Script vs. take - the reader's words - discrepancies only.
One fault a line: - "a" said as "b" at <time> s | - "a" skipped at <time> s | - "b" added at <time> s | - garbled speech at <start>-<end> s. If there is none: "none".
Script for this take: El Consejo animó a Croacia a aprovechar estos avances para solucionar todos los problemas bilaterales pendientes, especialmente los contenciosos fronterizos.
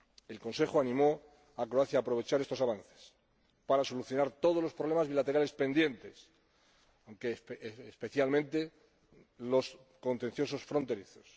none